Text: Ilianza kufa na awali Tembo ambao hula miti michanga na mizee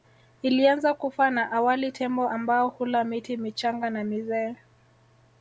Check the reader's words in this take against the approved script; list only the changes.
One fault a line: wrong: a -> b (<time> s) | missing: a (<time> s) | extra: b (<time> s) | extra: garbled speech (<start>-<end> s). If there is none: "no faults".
no faults